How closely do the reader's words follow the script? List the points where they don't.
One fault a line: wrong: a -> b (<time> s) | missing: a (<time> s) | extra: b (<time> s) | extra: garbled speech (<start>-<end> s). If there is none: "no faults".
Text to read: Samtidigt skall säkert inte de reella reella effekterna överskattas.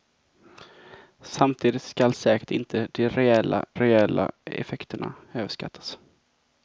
no faults